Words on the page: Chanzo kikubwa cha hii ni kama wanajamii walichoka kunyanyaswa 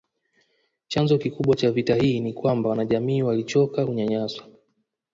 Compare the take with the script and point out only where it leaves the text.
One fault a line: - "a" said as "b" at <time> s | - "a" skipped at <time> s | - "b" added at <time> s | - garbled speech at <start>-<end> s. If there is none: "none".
- "vita" added at 1.7 s
- "kama" said as "kwamba" at 2.3 s